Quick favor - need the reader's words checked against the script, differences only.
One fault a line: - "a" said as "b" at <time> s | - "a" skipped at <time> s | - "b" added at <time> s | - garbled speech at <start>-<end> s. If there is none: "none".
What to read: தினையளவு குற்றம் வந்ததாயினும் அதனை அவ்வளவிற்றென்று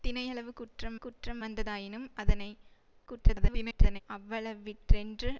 - "குற்றம்" added at 1.0 s
- garbled speech at 3.1-4.0 s